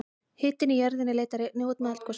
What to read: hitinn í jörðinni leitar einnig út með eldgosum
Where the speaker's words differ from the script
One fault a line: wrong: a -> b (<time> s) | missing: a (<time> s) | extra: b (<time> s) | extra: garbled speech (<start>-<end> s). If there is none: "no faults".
no faults